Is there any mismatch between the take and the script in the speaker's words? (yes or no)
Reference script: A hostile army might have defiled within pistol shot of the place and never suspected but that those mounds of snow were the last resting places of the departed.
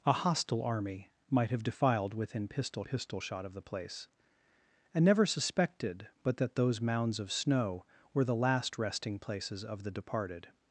yes